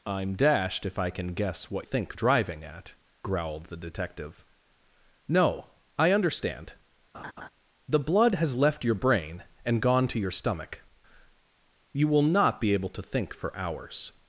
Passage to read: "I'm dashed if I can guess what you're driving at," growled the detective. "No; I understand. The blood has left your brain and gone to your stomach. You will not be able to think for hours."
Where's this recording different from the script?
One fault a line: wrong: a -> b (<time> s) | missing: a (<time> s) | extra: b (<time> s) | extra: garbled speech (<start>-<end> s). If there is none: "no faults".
wrong: you're -> think (1.8 s)